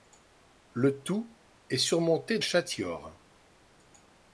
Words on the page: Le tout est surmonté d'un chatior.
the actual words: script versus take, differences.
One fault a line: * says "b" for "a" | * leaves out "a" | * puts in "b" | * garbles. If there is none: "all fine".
* leaves out "d'un"